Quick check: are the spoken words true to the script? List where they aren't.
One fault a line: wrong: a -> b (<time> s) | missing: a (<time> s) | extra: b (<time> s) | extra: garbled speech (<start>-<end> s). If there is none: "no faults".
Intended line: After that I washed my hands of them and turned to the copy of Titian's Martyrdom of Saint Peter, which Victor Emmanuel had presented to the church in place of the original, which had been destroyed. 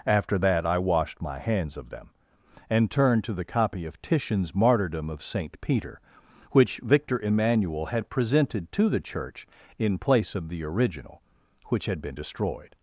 no faults